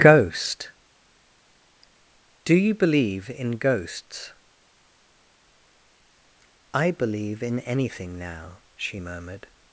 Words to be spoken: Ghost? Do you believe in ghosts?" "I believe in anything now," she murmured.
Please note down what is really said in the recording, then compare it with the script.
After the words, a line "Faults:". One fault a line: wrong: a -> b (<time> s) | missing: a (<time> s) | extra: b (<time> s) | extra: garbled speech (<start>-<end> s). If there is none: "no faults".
Ghost? Do you believe in ghosts?" "I believe in anything now," she murmured.
Faults:
no faults